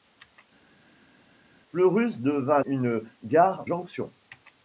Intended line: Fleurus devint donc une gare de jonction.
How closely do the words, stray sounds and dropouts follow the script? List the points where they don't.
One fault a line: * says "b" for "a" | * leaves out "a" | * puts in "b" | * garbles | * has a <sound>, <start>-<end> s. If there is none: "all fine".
* leaves out "donc"
* leaves out "de"